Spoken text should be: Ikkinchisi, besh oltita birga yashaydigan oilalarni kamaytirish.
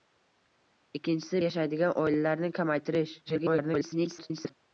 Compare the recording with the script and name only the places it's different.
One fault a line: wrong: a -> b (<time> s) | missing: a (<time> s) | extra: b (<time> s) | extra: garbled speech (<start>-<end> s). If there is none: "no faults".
missing: besh oltita birga (1.4 s)
extra: garbled speech (3.3-4.5 s)